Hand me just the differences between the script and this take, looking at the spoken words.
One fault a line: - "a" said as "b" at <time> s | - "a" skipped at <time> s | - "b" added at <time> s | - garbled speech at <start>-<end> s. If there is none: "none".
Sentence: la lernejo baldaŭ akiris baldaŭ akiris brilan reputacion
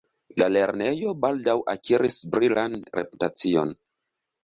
- "baldaŭ akiris" skipped at 2.2 s